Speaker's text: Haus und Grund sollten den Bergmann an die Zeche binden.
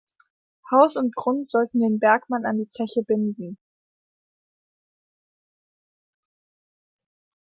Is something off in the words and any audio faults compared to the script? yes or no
no